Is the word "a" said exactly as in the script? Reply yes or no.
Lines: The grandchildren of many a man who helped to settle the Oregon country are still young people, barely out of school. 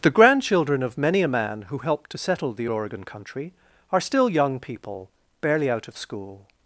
yes